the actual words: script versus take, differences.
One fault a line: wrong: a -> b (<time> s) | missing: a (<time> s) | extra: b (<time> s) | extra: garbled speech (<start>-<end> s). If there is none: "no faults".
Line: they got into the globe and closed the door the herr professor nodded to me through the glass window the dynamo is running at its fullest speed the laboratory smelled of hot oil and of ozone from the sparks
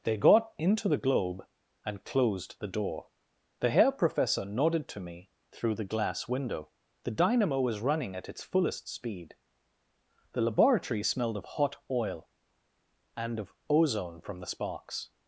wrong: is -> was (7.6 s)